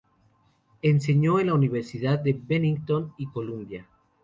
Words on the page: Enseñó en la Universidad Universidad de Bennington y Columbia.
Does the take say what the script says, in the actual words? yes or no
no